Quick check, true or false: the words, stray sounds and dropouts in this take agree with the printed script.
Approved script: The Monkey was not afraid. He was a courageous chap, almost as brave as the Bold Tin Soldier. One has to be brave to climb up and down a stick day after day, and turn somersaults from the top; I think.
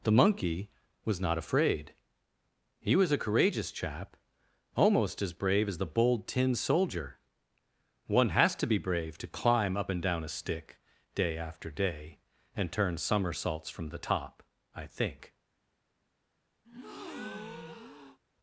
false